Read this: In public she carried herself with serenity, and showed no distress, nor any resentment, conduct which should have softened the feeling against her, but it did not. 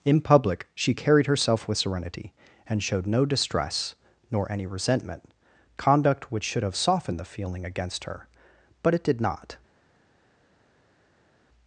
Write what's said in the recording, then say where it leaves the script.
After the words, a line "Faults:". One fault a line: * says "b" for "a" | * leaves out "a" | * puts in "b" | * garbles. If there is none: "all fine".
In public she carried herself with serenity, and showed no distress, nor any resentment, conduct which should have softened the feeling against her, but it did not.
Faults:
all fine